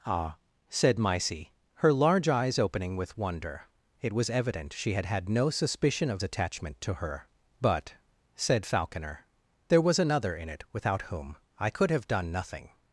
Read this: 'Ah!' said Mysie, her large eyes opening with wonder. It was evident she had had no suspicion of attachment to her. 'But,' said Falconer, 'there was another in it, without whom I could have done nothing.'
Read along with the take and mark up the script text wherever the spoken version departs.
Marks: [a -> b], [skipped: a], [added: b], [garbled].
'Ah!' said Mysie, her large eyes opening with wonder. It was evident she had had no suspicion of attachment to her. 'But,' said Falconer, 'there was another in it, without whom I could have done nothing.'